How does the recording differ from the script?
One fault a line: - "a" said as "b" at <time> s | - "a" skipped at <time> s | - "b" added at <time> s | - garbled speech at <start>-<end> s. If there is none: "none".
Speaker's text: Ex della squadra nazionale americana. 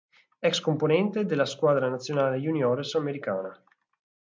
- "componente" added at 0.6 s
- "juniores" added at 2.4 s